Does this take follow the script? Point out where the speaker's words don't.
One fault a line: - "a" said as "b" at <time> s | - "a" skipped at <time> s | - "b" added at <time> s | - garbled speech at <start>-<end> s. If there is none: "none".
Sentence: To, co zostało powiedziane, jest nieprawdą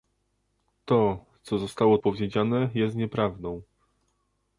none